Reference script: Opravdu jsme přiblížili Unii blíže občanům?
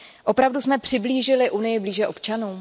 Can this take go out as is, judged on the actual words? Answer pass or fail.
pass